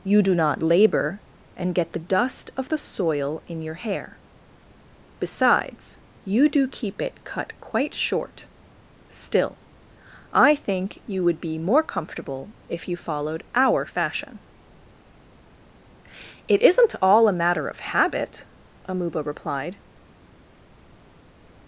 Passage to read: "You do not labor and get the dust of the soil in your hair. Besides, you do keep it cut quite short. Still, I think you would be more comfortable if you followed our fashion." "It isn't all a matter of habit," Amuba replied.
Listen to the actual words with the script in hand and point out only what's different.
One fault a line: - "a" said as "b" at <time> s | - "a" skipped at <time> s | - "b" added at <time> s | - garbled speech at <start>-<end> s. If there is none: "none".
none